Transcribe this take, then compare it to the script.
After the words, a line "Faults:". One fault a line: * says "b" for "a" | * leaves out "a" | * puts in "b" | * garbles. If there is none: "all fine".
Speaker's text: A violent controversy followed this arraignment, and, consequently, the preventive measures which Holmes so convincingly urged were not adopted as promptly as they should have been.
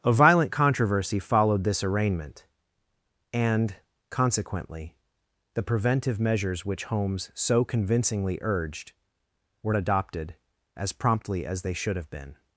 A violent controversy followed this arraignment, and, consequently, the preventive measures which Holmes so convincingly urged were adopted as promptly as they should have been.
Faults:
* leaves out "not"